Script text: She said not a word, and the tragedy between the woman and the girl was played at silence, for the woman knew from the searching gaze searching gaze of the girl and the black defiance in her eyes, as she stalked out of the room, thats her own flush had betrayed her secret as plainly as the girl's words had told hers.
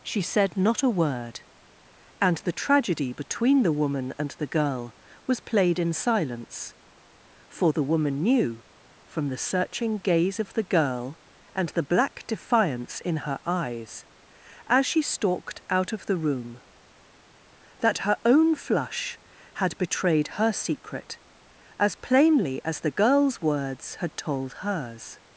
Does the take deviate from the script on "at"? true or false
true